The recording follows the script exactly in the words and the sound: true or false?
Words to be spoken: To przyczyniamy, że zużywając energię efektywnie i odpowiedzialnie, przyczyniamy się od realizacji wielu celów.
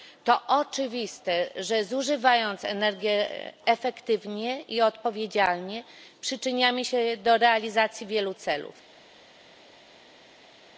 false